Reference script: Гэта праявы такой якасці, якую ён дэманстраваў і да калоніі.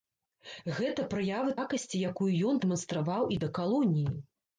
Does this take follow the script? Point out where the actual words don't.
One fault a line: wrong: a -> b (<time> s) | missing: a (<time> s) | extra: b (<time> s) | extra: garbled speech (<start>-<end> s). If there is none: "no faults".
missing: такой (1.5 s)